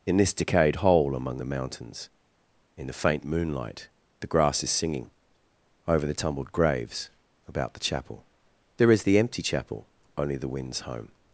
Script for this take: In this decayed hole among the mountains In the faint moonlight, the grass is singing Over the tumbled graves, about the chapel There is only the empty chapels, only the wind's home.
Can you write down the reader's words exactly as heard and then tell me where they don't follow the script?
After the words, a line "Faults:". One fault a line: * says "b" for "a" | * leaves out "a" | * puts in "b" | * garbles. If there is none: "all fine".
In this decayed hole among the mountains In the faint moonlight, the grass is singing Over the tumbled graves, about the chapel There is the empty chapel, only the wind's home.
Faults:
* leaves out "only"
* says "chapel" for "chapels"